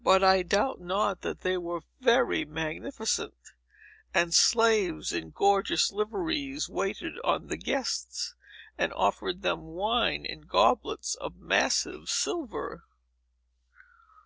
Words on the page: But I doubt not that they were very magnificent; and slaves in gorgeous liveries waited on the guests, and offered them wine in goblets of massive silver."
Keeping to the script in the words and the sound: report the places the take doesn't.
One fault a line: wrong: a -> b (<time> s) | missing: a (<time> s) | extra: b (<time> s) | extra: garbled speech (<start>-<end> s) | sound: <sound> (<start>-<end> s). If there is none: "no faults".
no faults